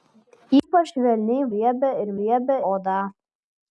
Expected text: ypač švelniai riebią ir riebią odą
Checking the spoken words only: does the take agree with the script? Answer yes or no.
yes